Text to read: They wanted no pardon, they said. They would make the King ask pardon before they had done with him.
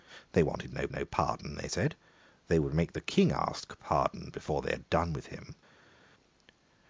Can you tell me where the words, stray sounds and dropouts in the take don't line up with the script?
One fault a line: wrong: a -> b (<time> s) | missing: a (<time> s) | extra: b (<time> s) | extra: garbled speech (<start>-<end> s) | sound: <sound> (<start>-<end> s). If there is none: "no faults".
extra: no (0.9 s)